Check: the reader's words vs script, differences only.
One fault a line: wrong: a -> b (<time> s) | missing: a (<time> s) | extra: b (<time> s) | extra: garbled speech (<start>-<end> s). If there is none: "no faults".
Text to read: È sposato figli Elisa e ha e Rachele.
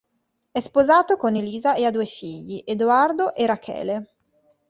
wrong: figli -> con (1.1 s)
extra: due figli Edoardo (1.9 s)